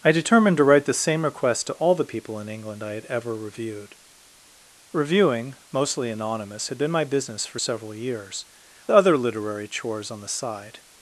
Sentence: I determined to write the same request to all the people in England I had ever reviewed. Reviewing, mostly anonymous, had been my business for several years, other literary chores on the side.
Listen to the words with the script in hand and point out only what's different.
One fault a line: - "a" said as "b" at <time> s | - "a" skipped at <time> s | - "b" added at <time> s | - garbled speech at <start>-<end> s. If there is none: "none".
none